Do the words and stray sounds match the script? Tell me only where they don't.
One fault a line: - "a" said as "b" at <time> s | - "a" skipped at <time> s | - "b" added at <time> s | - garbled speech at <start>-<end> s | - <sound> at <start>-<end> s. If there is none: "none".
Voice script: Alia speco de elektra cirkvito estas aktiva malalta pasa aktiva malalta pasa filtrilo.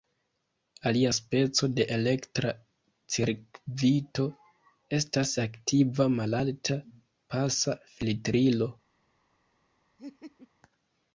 - "aktiva malalta pasa" skipped at 7.8 s
- laugh at 10.0-10.5 s